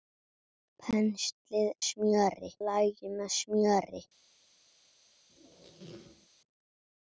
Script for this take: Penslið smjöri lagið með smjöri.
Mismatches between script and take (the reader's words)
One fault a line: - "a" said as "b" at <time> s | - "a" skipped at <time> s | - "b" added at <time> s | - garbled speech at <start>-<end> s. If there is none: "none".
none